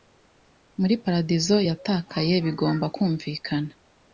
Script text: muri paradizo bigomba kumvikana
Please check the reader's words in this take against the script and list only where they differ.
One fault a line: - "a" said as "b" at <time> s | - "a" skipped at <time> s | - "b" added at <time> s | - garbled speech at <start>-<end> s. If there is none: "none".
- "yatakaye" added at 1.7 s